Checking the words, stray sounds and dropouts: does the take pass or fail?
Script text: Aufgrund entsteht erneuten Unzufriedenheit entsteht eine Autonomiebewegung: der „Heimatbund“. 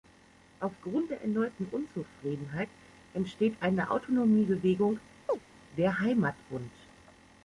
fail